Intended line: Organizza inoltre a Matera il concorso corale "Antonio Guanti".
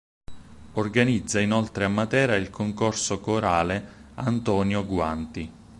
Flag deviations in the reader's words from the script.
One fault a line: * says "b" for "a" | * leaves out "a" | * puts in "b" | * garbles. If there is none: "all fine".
all fine